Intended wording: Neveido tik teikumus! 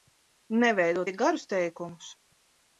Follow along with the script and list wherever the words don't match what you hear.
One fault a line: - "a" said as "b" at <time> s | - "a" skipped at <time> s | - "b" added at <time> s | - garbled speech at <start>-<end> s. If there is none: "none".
- "garus" added at 1.2 s